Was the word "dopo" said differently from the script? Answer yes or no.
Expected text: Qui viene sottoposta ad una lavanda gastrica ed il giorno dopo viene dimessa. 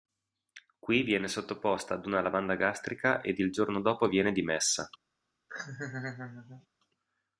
no